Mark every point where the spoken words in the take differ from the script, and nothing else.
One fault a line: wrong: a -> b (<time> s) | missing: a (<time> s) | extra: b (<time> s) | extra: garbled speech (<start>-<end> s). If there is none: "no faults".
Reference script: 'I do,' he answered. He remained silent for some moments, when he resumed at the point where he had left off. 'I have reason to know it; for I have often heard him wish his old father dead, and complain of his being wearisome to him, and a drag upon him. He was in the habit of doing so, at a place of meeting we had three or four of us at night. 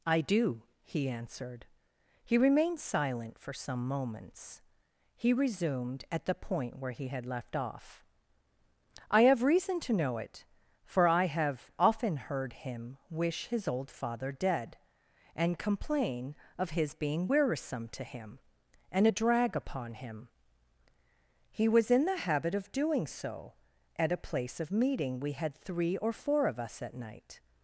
missing: when (4.6 s)